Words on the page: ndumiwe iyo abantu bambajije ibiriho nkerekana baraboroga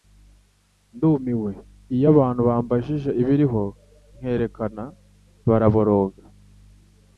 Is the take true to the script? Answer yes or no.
yes